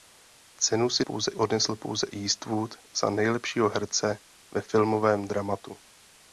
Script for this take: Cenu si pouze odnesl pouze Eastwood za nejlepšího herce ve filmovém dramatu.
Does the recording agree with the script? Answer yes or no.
yes